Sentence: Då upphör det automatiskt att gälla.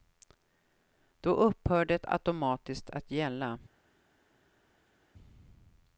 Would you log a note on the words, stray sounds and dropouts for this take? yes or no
no